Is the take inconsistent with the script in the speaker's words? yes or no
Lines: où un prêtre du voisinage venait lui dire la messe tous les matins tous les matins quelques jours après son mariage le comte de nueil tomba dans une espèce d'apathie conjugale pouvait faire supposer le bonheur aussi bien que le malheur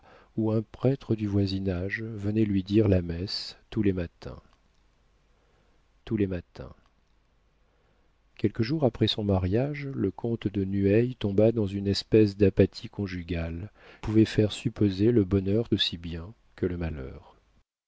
no